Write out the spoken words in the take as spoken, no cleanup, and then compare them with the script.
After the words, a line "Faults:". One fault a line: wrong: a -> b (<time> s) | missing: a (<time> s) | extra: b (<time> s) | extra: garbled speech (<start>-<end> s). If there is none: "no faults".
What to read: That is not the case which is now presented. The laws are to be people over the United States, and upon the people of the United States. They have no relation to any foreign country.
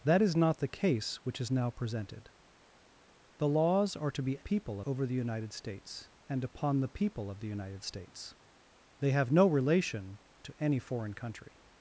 That is not the case which is now presented. The laws are to be people over the United States, and upon the people of the United States. They have no relation to any foreign country.
Faults:
no faults